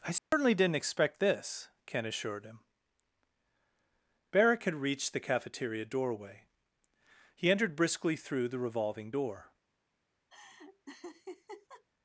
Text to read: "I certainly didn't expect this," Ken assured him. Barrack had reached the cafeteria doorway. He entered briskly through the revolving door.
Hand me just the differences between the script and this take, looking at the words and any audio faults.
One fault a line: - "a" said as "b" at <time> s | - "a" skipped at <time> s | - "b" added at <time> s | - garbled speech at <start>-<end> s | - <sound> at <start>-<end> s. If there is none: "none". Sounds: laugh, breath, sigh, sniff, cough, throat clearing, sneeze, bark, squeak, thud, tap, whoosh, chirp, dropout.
- dropout at 0.2-0.3 s
- laugh at 10.3-11.8 s